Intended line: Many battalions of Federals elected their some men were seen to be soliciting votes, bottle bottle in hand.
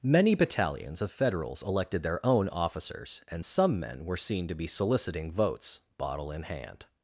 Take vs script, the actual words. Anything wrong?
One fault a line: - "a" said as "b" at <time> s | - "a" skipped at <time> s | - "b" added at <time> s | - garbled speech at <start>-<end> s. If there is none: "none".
- "own officers and" added at 2.2 s
- "bottle" skipped at 6.3 s